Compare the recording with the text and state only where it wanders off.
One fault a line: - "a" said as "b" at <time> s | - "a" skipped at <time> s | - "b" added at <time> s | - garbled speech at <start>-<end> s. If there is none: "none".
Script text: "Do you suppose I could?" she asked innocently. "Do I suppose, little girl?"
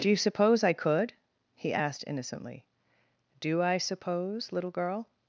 - "she" said as "he" at 1.6 s